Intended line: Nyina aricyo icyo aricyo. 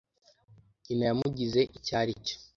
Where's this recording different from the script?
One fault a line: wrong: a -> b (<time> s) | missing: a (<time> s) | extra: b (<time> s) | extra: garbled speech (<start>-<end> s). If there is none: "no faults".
wrong: aricyo -> yamugize (1.1 s)